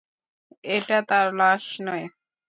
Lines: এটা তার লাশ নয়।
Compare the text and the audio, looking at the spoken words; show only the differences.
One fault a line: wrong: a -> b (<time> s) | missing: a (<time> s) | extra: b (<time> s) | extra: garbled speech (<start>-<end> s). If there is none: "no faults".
no faults